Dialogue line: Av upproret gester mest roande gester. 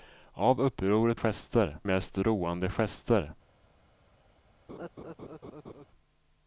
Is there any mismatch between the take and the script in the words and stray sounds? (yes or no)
yes